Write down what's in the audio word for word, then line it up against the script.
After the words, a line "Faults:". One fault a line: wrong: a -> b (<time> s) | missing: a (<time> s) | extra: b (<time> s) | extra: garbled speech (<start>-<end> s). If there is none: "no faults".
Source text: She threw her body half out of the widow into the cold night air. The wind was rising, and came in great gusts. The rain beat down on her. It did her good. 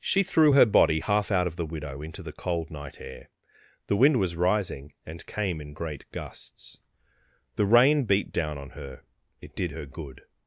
She threw her body half out of the widow into the cold night air. The wind was rising, and came in great gusts. The rain beat down on her. It did her good.
Faults:
no faults